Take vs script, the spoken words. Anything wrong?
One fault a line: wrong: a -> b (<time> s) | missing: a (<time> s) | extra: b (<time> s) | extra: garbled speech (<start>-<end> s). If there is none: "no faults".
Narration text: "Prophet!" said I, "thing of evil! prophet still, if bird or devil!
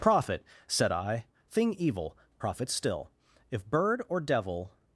missing: of (1.8 s)